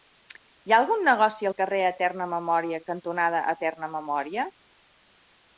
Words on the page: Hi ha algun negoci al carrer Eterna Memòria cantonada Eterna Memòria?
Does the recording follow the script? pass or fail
pass